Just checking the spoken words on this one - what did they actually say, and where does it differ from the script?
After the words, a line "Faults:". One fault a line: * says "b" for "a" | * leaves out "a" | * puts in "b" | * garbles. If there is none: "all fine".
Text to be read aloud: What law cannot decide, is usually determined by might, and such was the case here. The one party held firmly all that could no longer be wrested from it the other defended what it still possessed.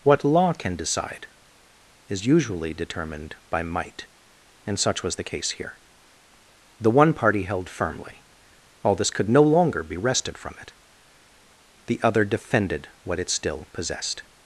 What law can decide, is usually determined by might, and such was the case here. The one party held firmly all this could no longer be wrested from it the other defended what it still possessed.
Faults:
* says "can" for "cannot"
* says "this" for "that"